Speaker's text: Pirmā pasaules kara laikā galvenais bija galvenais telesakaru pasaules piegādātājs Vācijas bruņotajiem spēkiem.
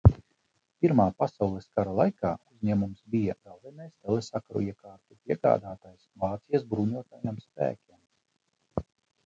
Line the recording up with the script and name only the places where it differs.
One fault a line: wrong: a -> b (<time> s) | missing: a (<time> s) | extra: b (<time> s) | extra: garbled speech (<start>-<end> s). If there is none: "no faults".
wrong: galvenais -> uzņēmums (2.5 s)
wrong: pasaules -> iekārtu (4.7 s)